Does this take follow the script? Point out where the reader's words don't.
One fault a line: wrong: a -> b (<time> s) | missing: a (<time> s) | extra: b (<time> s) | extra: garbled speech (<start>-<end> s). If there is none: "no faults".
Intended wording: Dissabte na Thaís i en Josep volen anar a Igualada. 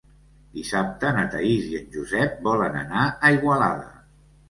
no faults